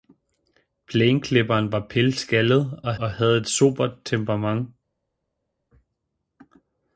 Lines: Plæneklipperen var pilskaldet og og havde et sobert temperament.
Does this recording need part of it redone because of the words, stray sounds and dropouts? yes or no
no